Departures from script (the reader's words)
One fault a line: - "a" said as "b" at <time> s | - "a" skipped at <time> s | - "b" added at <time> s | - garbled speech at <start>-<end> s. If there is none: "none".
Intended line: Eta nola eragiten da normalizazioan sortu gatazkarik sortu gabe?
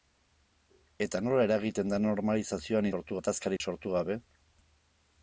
none